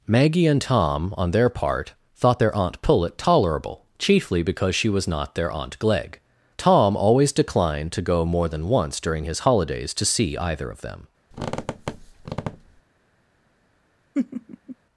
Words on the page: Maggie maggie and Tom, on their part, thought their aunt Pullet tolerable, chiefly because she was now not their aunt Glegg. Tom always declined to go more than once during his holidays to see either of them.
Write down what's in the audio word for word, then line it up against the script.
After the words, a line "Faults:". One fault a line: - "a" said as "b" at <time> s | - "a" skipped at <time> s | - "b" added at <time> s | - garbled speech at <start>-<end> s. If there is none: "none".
Maggie and Tom, on their part, thought their aunt Pullet tolerable, chiefly because she was not their aunt Glegg. Tom always declined to go more than once during his holidays to see either of them.
Faults:
- "maggie" skipped at 0.5 s
- "now" skipped at 5.1 s